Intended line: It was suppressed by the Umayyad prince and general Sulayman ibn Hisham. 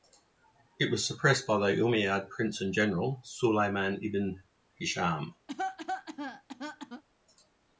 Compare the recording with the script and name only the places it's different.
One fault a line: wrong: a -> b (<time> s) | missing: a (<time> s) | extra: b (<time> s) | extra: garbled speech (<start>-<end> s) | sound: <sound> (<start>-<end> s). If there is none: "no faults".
sound: cough (5.5-7.0 s)